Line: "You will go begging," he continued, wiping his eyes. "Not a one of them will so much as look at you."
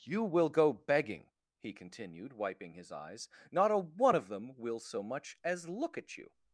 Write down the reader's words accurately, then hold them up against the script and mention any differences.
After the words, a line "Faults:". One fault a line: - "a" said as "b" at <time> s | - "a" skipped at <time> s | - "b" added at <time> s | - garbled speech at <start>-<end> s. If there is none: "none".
"You will go begging," he continued, wiping his eyes. "Not a one of them will so much as look at you."
Faults:
none